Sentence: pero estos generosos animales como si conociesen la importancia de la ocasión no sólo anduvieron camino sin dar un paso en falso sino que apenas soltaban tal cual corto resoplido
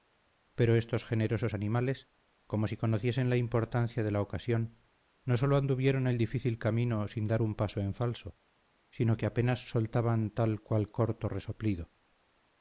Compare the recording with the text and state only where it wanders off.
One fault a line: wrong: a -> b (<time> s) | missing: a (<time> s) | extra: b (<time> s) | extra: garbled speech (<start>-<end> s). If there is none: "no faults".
extra: el difícil (6.1 s)